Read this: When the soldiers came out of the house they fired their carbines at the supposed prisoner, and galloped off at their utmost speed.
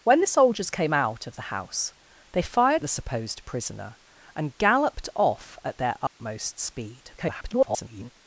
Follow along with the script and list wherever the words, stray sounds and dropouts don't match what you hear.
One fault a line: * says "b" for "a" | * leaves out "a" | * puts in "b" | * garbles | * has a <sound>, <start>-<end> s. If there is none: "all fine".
* leaves out "their carbines at"
* has a dropout, 6.1-6.2 s
* garbles